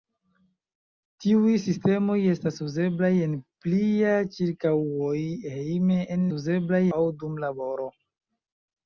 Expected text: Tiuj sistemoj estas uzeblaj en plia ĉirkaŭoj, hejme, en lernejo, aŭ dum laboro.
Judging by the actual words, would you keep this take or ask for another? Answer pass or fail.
fail